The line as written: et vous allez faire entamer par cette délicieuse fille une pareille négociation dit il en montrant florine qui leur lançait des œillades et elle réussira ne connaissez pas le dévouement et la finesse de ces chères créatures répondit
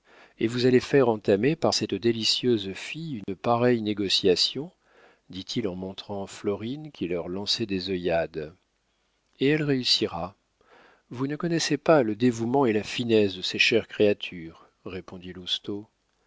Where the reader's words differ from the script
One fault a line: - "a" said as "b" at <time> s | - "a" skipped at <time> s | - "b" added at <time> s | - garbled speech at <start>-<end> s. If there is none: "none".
- "vous" added at 11.1 s